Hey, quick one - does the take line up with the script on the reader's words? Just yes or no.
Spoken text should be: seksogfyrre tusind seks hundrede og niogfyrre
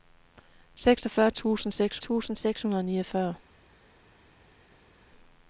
no